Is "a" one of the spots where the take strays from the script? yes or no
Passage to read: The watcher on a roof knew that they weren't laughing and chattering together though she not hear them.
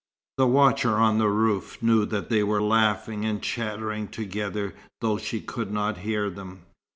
yes